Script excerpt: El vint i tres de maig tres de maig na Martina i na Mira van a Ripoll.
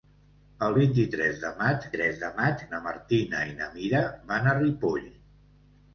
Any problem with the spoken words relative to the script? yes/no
no